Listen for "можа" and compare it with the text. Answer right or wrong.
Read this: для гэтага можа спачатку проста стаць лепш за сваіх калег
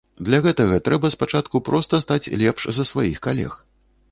wrong